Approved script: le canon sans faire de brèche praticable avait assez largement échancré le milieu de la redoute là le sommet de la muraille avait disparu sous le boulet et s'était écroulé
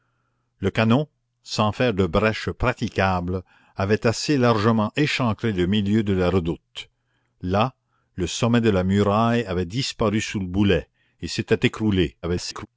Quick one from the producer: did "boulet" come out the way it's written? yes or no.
yes